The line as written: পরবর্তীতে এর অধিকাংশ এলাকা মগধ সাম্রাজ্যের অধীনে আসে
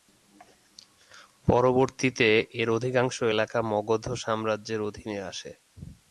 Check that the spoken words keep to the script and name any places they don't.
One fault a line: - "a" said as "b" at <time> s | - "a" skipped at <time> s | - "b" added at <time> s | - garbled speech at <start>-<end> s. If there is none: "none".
none